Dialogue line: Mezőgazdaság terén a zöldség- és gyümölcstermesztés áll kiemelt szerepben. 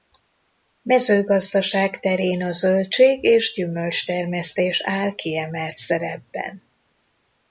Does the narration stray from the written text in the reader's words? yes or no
no